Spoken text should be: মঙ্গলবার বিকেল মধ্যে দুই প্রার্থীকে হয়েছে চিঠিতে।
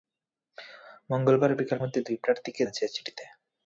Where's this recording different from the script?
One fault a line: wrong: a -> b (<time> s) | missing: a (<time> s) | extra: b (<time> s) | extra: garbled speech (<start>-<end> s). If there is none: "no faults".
no faults